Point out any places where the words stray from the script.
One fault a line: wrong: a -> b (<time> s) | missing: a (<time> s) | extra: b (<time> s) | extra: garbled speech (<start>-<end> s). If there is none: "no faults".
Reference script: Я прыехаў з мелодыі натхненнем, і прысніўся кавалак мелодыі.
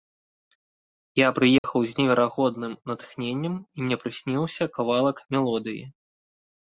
wrong: мелодыі -> неверагодным (2.0 s)
extra: мне (3.9 s)